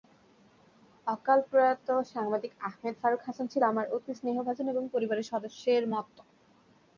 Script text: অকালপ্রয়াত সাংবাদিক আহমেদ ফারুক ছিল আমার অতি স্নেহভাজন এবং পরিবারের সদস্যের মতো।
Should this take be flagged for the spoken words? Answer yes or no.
yes